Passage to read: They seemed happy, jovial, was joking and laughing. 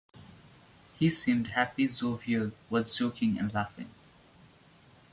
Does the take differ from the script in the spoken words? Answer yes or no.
yes